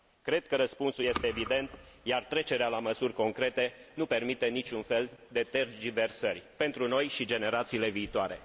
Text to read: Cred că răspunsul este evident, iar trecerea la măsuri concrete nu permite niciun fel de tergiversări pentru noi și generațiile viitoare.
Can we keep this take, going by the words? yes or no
yes